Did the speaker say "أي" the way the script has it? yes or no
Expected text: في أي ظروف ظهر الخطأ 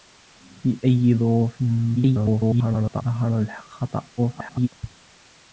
yes